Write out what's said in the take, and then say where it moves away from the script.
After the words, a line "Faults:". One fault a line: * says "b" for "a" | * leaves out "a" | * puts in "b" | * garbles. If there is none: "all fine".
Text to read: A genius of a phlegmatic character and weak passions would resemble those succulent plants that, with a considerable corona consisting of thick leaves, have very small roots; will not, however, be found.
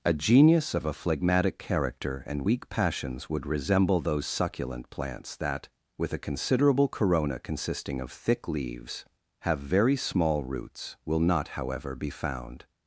A genius of a phlegmatic character and weak passions would resemble those succulent plants that, with a considerable corona consisting of thick leaves, have very small roots; will not, however, be found.
Faults:
all fine